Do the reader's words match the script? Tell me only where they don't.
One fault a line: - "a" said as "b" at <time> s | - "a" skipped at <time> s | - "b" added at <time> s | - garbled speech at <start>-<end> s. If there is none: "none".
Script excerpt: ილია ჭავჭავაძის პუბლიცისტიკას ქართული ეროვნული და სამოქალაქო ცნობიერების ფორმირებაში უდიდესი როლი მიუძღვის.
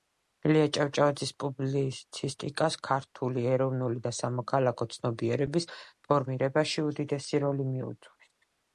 none